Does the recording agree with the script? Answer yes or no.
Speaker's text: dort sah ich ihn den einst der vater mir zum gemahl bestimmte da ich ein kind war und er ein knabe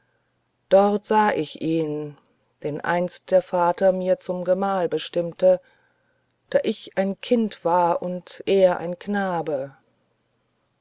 yes